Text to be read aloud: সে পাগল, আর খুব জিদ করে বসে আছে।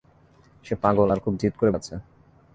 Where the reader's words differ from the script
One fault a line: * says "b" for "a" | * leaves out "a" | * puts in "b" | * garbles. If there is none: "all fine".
* leaves out "বসে"